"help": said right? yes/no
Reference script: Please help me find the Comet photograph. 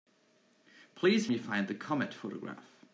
no